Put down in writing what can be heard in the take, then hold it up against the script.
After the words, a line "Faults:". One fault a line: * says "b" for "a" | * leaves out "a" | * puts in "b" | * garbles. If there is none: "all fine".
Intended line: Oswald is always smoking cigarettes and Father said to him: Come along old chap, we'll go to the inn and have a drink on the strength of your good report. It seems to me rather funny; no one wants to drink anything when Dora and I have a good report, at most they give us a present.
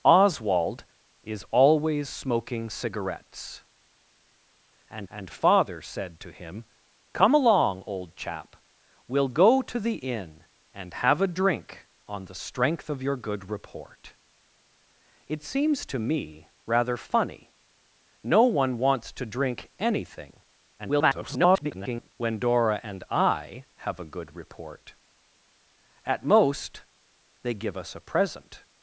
Oswald is always smoking cigarettes and and Father said to him: Come along old chap, we'll go to the inn and have a drink on the strength of your good report. It seems to me rather funny; no one wants to drink anything [garbled] when Dora and I have a good report, at most they give us a present.
Faults:
* puts in "and"
* garbles